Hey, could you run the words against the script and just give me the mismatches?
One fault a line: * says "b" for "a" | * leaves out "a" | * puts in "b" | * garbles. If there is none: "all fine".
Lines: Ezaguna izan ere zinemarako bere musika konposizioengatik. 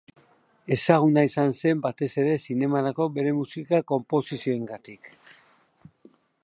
* puts in "zen batez"